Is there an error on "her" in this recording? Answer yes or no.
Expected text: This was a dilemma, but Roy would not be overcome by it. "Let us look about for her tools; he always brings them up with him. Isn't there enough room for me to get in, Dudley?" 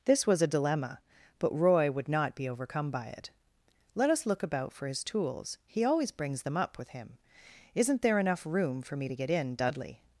yes